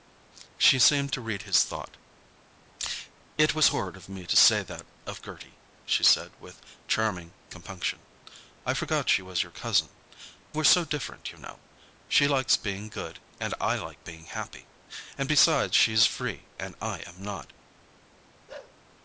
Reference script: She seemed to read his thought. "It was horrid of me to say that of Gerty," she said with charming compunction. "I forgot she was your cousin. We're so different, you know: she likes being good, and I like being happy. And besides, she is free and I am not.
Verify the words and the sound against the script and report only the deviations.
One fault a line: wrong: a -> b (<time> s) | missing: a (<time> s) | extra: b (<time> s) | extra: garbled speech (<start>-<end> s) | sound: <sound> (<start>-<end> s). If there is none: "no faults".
sound: bark (18.5-18.8 s)